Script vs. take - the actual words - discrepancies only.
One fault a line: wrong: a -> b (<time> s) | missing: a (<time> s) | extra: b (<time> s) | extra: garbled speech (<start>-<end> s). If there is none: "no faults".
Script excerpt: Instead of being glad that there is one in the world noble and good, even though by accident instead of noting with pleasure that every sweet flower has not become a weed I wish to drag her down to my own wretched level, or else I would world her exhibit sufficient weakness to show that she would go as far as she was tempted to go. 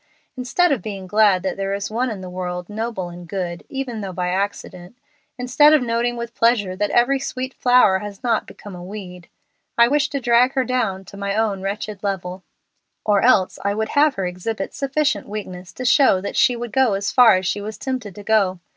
wrong: world -> have (13.9 s)